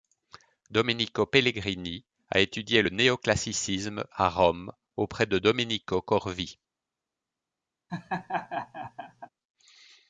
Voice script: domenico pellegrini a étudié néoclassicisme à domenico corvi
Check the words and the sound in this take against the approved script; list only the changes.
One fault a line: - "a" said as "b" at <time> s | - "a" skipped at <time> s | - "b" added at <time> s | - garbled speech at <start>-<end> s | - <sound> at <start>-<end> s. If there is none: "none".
- "le" added at 2.8 s
- "rome auprès de" added at 4.3 s
- laugh at 7.9-9.3 s